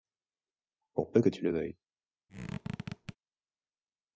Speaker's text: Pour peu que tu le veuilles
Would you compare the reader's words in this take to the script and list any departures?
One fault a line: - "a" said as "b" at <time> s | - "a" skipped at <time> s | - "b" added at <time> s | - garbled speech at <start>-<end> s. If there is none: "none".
none